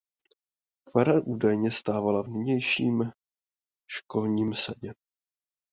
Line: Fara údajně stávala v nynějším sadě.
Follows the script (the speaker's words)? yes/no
no